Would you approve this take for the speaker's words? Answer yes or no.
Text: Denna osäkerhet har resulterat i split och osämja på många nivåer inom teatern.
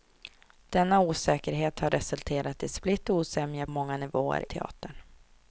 no